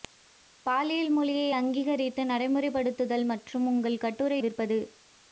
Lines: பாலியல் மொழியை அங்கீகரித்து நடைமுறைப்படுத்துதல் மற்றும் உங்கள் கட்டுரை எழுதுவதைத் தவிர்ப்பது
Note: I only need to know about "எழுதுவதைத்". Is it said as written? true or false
false